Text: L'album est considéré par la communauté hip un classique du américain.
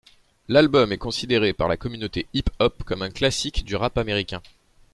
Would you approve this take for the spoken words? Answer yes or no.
no